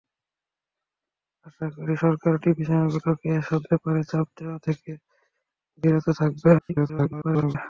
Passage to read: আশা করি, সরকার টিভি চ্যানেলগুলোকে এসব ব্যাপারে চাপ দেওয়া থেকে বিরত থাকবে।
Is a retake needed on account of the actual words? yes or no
yes